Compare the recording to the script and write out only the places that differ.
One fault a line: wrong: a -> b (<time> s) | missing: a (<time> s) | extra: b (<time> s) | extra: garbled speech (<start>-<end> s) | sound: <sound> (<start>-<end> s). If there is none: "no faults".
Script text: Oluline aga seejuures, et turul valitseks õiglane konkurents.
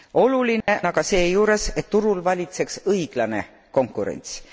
sound: dropout (0.6-0.7 s)